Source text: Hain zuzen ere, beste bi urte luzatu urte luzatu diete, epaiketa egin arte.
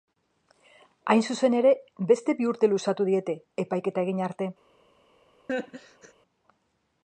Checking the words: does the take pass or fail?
fail